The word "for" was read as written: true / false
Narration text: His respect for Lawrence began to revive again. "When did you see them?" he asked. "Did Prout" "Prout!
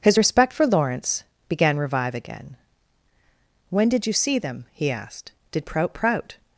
true